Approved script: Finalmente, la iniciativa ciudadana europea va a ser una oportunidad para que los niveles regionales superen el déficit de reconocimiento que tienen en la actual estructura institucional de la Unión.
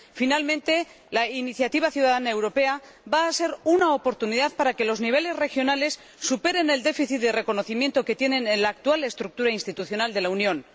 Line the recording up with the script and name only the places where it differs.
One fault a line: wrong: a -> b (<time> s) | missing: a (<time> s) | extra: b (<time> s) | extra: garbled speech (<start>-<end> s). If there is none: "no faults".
no faults